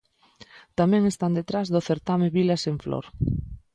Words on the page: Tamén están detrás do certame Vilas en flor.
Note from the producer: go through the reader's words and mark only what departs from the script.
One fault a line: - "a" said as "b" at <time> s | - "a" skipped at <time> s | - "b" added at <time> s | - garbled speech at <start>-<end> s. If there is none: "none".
none